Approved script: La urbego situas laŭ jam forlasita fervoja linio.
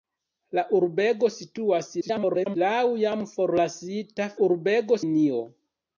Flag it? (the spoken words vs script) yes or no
yes